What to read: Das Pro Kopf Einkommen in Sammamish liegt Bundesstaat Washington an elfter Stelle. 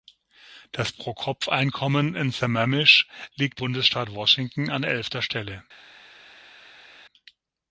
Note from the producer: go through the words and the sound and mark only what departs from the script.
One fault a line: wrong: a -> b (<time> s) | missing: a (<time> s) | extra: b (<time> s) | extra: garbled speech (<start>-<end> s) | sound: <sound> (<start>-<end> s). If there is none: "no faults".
no faults